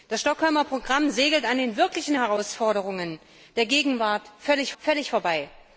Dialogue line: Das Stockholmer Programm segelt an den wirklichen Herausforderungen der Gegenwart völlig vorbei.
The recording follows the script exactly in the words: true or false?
false